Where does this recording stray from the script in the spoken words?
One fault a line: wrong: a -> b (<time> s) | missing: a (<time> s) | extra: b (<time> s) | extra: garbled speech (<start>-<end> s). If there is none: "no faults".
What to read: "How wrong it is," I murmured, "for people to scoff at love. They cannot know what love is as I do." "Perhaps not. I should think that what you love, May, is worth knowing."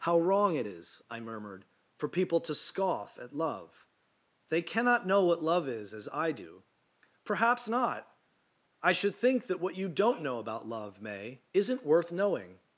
extra: don't know about (9.9 s)
wrong: is -> isn't (11.5 s)